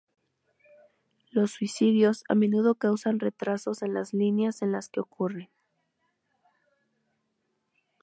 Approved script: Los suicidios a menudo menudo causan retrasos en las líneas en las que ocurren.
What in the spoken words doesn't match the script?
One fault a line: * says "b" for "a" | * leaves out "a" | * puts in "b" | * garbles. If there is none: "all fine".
* leaves out "menudo"